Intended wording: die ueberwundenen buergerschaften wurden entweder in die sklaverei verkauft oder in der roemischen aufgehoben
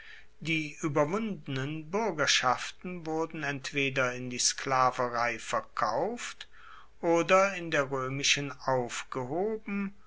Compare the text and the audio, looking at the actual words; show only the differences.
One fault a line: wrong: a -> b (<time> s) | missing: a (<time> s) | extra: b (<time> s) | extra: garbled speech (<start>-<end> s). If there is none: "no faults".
no faults